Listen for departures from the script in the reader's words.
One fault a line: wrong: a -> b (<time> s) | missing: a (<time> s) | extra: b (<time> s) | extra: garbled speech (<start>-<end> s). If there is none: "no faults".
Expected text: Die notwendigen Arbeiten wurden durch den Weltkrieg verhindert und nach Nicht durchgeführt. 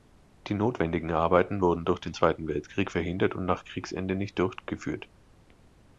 extra: Zweiten (2.1 s)
extra: Kriegsende (3.6 s)